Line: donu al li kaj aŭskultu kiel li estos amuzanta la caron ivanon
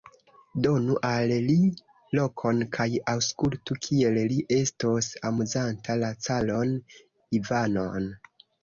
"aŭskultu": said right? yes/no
yes